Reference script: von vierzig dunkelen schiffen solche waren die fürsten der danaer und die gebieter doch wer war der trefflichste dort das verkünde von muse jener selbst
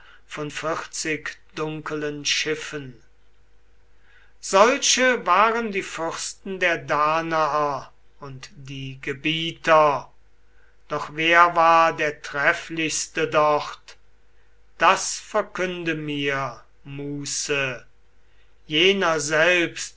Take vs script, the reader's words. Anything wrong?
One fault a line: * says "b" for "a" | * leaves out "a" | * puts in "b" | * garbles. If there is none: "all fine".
* says "mir" for "von"